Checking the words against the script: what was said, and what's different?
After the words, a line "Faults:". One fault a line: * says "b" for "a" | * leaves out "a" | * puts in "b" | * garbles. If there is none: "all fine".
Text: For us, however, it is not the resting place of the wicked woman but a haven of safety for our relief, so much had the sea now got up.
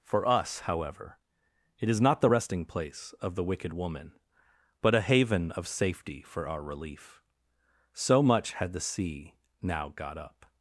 For us, however, it is not the resting place of the wicked woman but a haven of safety for our relief, so much had the sea now got up.
Faults:
all fine